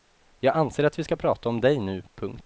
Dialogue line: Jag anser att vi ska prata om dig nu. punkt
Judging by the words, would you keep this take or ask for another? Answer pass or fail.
pass